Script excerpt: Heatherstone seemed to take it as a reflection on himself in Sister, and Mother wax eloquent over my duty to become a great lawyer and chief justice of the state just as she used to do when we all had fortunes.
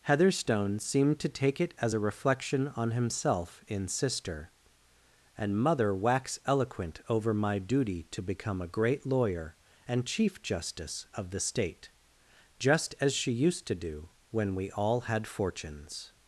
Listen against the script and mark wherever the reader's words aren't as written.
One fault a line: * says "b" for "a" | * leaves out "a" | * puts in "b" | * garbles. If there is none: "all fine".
all fine